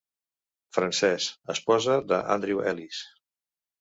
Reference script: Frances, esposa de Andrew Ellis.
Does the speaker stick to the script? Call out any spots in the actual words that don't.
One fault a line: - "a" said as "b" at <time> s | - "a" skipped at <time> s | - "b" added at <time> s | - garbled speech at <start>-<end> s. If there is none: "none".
none